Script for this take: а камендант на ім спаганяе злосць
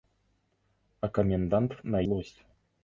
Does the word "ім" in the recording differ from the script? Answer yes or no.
yes